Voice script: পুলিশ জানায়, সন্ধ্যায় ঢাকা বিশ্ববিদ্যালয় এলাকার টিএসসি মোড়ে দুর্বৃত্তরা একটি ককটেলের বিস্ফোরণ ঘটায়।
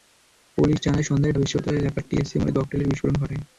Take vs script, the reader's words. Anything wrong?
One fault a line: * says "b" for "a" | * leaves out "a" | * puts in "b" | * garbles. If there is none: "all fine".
* leaves out "ঢাকা"
* leaves out "দুর্বৃত্তরা একটি"